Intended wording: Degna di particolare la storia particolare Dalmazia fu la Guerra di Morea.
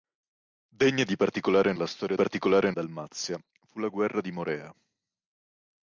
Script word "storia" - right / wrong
right